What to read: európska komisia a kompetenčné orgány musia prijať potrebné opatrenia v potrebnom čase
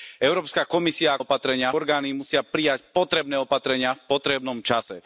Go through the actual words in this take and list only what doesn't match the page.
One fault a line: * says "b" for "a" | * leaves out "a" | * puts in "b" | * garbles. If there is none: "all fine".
* says "opatrenia" for "kompetenčné"